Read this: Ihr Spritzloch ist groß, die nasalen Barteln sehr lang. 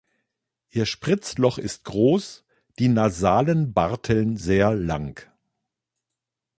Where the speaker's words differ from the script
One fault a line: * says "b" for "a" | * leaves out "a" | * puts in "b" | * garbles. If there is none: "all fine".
all fine